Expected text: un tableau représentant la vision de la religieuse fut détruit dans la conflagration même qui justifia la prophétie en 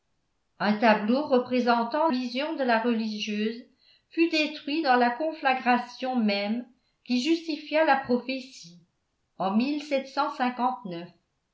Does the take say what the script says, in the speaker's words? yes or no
no